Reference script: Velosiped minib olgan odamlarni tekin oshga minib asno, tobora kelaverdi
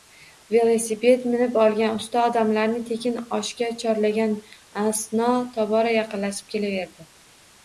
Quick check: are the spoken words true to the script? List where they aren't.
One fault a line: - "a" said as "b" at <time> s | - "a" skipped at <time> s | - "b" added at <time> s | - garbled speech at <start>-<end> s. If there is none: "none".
- "usta" added at 2.0 s
- "minib" said as "chorlagan" at 3.9 s
- "yaqinlashib" added at 6.0 s